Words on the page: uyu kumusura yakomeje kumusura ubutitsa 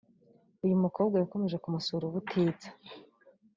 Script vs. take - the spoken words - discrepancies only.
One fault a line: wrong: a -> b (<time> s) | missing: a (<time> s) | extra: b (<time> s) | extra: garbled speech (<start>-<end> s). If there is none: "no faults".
wrong: kumusura -> mukobwa (0.8 s)